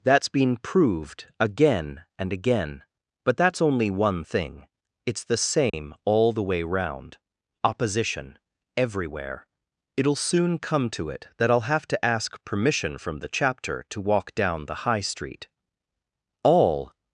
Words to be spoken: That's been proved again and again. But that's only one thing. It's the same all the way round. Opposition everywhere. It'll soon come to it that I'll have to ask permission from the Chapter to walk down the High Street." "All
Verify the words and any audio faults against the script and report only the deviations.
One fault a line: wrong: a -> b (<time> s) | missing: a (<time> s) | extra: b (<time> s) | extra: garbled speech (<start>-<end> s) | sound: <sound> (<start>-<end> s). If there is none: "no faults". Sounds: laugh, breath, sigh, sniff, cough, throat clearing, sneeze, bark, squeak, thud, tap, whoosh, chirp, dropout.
sound: dropout (5.7-5.7 s)